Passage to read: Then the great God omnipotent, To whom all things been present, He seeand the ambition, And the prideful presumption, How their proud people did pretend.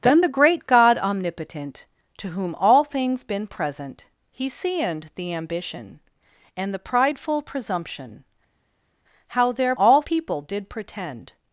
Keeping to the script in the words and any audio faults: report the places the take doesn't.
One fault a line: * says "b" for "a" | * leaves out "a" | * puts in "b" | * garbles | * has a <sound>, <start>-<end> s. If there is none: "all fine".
* says "all" for "proud"